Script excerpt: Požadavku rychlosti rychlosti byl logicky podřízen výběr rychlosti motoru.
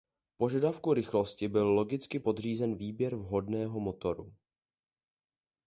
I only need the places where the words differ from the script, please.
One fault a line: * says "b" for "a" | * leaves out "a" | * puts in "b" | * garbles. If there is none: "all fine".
* leaves out "rychlosti"
* says "vhodného" for "rychlosti"